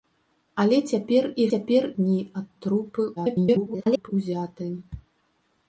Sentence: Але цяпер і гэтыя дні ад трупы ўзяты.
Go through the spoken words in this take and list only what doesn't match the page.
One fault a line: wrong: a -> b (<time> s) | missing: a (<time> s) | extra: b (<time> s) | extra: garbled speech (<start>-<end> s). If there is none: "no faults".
wrong: гэтыя -> цяпер (1.5 s)
extra: garbled speech (3.2-4.1 s)